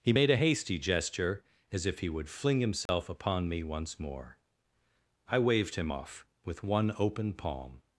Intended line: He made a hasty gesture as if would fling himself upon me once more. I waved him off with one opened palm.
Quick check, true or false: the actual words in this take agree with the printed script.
false